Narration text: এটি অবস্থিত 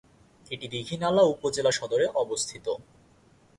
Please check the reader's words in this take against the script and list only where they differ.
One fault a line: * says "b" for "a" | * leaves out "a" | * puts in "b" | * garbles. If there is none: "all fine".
* puts in "দীঘিনালা উপজেলা সদরে"